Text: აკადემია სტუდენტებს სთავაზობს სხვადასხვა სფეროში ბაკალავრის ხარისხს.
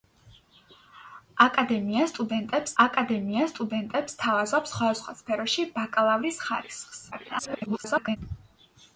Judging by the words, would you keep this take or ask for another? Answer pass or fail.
fail